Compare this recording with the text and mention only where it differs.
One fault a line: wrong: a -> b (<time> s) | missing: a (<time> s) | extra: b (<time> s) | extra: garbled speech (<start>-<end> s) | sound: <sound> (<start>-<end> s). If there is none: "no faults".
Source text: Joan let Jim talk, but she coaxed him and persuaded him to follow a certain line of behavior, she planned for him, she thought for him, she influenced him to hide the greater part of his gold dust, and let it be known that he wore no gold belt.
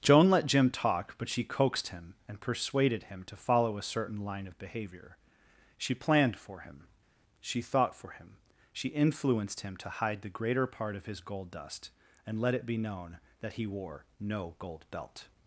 no faults